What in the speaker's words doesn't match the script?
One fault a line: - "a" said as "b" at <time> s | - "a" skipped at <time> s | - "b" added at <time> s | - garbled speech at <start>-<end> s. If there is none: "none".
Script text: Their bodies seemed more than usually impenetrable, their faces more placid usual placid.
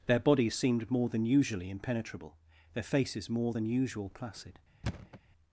- "placid" said as "than" at 3.5 s